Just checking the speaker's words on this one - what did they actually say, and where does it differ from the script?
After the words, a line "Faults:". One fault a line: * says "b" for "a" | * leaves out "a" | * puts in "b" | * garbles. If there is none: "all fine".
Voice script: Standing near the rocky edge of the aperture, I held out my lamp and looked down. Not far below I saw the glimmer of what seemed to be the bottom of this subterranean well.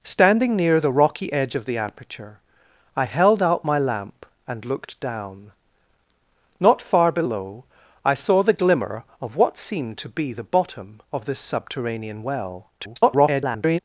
Standing near the rocky edge of the aperture, I held out my lamp and looked down. Not far below I saw the glimmer of what seemed to be the bottom of this subterranean well. [garbled]
Faults:
* garbles